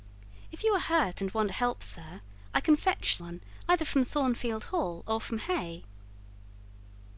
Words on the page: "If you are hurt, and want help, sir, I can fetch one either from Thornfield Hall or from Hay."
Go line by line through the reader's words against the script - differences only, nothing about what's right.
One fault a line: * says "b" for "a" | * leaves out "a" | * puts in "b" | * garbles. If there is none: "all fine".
all fine